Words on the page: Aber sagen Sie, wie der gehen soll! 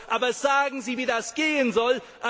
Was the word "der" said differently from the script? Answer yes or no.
yes